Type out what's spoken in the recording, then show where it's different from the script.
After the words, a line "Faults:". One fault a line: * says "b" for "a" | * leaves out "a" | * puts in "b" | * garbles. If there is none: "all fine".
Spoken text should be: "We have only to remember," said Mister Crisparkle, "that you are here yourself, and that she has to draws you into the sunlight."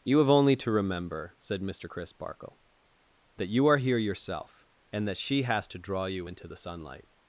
"You have only to remember," said Mister Crisparkle, "that you are here yourself, and that she has to draw you into the sunlight."
Faults:
* says "You" for "We"
* says "draw" for "draws"